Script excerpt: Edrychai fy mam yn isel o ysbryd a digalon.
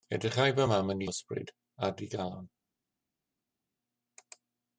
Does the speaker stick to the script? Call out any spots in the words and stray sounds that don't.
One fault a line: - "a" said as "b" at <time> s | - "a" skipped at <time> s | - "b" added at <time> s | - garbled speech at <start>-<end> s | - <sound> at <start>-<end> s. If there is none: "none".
- "isel" skipped at 1.0 s